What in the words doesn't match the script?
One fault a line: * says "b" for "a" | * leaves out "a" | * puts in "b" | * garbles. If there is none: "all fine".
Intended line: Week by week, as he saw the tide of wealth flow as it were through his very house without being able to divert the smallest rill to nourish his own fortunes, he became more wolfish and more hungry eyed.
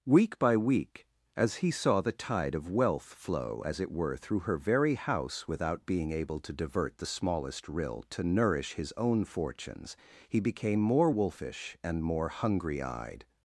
* says "her" for "his"